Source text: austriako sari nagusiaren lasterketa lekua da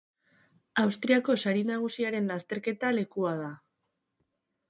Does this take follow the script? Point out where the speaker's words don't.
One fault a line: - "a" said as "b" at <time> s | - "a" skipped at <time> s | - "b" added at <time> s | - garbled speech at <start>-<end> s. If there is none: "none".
none